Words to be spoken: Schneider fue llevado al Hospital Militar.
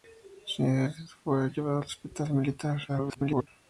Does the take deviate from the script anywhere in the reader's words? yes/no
yes